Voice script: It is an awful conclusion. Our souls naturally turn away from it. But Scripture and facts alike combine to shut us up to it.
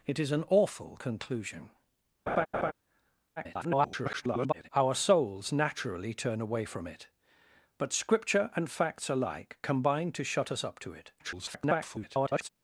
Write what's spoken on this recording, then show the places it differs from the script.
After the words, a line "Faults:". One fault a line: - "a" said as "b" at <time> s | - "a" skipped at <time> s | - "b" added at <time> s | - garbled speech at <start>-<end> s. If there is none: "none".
It is an awful conclusion. [garbled] Our souls naturally turn away from it. But Scripture and facts alike combine to shut us up to it. [garbled]
Faults:
- garbled speech at 3.4-4.7 s
- garbled speech at 11.2-12.5 s